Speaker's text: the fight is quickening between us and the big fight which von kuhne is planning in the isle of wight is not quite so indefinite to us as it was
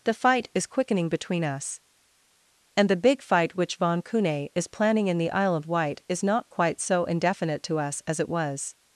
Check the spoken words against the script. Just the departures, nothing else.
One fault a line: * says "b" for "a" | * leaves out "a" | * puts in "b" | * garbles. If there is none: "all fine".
all fine